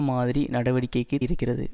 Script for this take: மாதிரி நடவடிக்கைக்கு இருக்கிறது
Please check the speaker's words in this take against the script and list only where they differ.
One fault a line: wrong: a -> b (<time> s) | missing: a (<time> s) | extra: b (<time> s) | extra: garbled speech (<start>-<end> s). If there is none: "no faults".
no faults